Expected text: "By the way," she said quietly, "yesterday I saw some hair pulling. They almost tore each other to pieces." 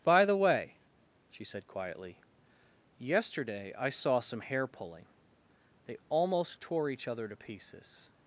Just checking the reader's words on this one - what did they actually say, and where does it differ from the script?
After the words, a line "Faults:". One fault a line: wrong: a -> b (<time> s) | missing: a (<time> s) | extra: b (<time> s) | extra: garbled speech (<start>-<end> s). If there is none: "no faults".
"By the way," she said quietly, "yesterday I saw some hair pulling. They almost tore each other to pieces."
Faults:
no faults